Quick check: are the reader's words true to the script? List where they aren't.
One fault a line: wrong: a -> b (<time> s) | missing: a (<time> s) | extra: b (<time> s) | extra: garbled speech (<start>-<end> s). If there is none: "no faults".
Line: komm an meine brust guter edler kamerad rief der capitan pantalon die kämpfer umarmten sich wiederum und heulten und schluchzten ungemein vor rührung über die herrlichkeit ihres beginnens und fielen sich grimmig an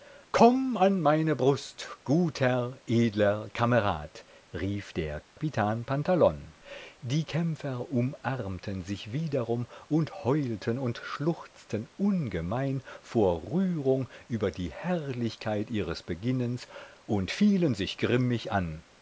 no faults